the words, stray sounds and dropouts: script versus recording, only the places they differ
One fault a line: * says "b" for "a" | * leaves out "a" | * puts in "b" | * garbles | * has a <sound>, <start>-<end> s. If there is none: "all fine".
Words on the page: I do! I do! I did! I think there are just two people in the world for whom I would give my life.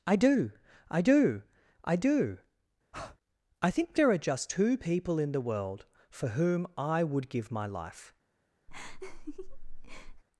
* says "do" for "did"
* has a breath, 2.9-3.2 s
* has a laugh, 8.7-10.2 s